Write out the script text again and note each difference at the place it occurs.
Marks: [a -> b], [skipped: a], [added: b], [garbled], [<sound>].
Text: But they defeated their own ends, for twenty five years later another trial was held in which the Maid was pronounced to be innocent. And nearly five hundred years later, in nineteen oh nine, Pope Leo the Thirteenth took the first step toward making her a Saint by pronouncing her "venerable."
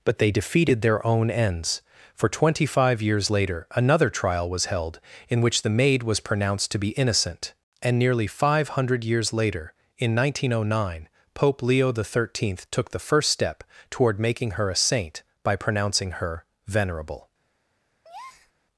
But they defeated their own ends, for twenty five years later another trial was held in which the Maid was pronounced to be innocent. And nearly five hundred years later, in nineteen oh nine, Pope Leo the Thirteenth took the first step toward making her a Saint by pronouncing her "venerable." [breath]